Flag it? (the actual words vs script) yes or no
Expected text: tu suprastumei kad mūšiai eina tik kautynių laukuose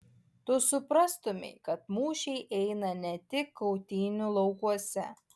yes